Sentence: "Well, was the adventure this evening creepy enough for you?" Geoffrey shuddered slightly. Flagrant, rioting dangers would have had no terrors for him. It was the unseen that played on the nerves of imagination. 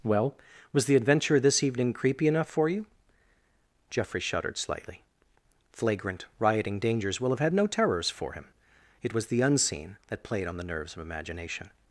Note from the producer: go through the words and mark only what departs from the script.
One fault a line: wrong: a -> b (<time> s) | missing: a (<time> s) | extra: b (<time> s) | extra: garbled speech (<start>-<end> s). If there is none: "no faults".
wrong: would -> will (7.2 s)